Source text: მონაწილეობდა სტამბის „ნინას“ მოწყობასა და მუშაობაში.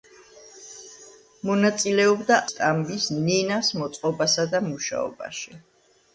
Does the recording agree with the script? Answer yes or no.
yes